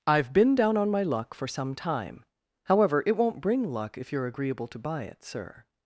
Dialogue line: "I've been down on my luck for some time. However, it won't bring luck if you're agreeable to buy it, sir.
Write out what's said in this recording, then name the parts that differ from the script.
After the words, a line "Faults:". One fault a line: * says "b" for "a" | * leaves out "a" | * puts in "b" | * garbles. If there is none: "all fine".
"I've been down on my luck for some time. However, it won't bring luck if you're agreeable to buy it, sir.
Faults:
all fine